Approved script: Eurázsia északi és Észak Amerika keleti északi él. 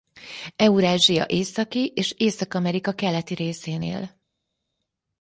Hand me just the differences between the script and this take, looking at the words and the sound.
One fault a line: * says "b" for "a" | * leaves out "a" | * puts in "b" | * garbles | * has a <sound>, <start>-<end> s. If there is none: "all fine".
* says "részén" for "északi"